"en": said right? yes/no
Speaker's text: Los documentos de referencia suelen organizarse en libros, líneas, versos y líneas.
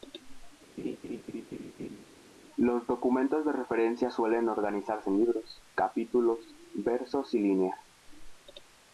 yes